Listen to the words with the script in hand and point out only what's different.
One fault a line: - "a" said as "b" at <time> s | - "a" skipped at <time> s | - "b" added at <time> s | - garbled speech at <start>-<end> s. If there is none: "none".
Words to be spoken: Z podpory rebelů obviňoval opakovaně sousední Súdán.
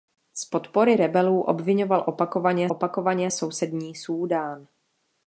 - "opakovaně" added at 2.7 s